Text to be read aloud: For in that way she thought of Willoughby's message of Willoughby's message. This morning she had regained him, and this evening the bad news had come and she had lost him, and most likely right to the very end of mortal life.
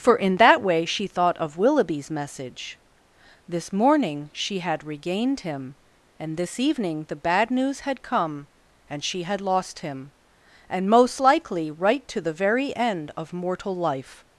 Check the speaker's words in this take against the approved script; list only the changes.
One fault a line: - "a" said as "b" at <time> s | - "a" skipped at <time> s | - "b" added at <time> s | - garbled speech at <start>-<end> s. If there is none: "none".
- "of Willoughby's message" skipped at 2.8 s